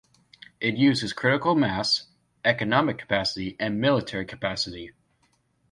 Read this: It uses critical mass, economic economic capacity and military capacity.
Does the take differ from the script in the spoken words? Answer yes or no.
yes